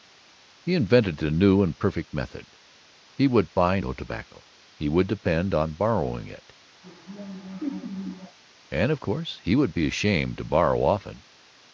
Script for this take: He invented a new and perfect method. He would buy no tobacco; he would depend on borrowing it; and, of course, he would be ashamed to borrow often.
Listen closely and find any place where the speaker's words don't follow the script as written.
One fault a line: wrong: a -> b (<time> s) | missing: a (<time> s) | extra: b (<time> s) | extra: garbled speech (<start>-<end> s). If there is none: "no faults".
no faults